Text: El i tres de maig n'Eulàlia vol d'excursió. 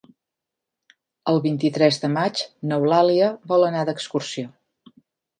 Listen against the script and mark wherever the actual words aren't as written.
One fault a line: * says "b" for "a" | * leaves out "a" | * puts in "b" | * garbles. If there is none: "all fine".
* puts in "vint"
* puts in "anar"